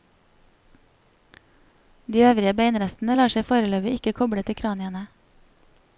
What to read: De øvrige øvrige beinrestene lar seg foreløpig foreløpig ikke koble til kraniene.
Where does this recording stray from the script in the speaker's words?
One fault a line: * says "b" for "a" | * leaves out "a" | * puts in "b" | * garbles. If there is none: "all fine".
* leaves out "øvrige"
* leaves out "foreløpig"